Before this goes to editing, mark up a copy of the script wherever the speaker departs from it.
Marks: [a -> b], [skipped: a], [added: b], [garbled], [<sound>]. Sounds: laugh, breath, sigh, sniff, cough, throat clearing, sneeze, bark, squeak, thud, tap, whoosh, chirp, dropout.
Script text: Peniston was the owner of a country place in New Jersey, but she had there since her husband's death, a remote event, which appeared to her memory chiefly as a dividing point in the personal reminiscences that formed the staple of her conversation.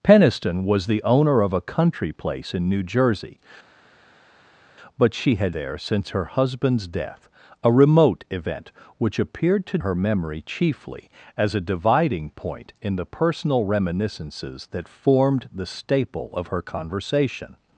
Peniston was the owner of a country place in New Jersey, but she had there since her husband's death, a remote event, which appeared to her memory chiefly as a dividing point in the personal reminiscences that formed the staple of her conversation.